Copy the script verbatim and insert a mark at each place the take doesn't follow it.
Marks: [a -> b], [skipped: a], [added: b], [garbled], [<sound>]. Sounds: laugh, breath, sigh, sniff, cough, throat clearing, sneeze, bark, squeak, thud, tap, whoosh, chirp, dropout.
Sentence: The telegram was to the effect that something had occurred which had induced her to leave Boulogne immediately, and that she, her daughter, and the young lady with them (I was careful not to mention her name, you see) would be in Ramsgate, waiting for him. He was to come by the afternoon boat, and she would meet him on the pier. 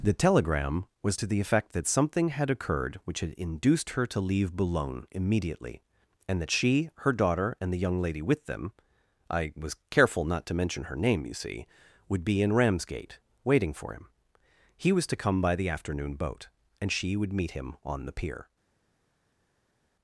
The telegram was to the effect that something had occurred which had induced her to leave Boulogne immediately, and that she, her daughter, and the young lady with them (I was careful not to mention her name, you see) would be in Ramsgate, waiting for him. He was to come by the afternoon boat, and she would meet him on the pier.